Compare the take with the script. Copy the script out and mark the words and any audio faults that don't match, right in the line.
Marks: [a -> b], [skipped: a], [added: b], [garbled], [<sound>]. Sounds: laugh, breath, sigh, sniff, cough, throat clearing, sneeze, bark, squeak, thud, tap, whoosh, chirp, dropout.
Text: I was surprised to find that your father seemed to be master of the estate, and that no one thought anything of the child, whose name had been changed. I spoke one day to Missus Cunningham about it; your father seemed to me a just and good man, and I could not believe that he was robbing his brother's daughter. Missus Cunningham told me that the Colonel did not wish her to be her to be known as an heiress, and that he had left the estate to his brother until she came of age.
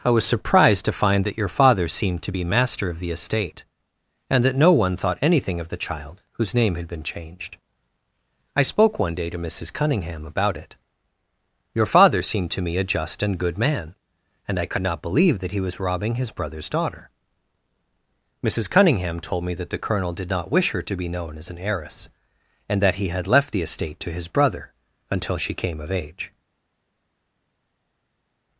I was surprised to find that your father seemed to be master of the estate, and that no one thought anything of the child, whose name had been changed. I spoke one day to Missus Cunningham about it; your father seemed to me a just and good man, and I could not believe that he was robbing his brother's daughter. Missus Cunningham told me that the Colonel did not wish her to be [skipped: her to be] known as an heiress, and that he had left the estate to his brother until she came of age.